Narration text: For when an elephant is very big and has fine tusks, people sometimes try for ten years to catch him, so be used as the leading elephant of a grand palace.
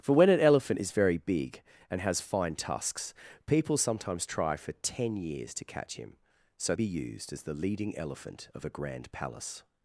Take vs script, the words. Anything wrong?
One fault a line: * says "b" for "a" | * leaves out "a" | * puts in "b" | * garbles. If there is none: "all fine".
all fine